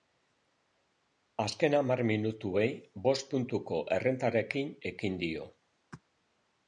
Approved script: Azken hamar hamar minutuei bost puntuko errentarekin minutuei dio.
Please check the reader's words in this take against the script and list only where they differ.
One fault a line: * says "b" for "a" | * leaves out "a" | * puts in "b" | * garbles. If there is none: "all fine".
* leaves out "hamar"
* says "ekin" for "minutuei"